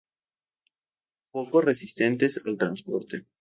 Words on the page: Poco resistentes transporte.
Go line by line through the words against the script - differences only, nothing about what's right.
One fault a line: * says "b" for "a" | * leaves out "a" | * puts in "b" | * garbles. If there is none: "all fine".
* puts in "al"